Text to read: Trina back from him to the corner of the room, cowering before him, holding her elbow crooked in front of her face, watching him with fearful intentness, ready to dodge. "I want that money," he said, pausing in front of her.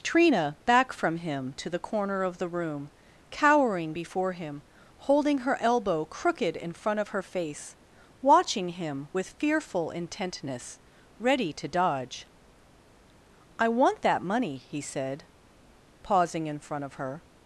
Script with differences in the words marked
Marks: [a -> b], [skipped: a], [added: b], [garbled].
Trina back from him to the corner of the room, cowering before him, holding her elbow crooked in front of her face, watching him with fearful intentness, ready to dodge. "I want that money," he said, pausing in front of her.